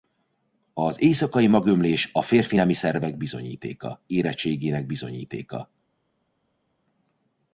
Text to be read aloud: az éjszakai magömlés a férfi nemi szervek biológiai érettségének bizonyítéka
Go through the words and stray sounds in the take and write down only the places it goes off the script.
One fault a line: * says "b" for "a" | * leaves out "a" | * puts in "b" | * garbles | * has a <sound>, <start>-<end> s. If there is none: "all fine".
* says "bizonyítéka" for "biológiai"